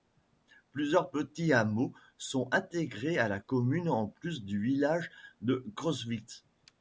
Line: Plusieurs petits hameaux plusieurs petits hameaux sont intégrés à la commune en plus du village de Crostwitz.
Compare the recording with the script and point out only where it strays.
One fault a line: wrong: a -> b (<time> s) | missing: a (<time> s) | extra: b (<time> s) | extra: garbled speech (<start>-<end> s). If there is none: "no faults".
missing: plusieurs petits hameaux (1.9 s)